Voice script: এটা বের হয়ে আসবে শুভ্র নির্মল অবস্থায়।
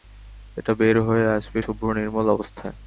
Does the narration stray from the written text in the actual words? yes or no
no